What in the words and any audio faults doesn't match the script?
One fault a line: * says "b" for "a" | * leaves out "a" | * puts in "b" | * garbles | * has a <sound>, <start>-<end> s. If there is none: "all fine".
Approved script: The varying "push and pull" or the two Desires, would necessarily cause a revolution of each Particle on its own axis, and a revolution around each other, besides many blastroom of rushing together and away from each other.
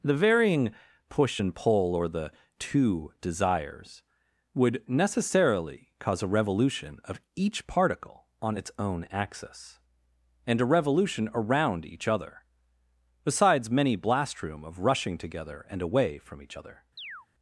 * has a chirp, 17.0-17.3 s